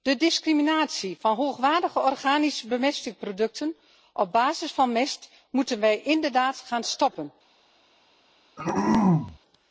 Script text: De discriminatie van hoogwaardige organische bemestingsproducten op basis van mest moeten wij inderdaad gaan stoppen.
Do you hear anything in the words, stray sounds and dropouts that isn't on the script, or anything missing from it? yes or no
yes